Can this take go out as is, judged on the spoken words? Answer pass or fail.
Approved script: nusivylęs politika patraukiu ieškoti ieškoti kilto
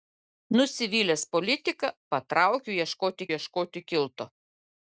pass